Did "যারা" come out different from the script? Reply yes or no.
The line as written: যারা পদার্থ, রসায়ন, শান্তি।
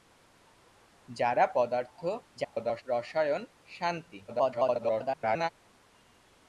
no